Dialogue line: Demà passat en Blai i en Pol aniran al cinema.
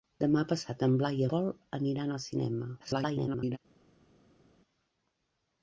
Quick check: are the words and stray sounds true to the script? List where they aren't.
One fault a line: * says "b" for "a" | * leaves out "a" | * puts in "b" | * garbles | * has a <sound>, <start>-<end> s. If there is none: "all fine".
* leaves out "en"
* garbles